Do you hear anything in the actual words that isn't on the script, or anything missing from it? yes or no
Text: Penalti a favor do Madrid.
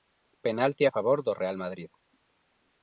yes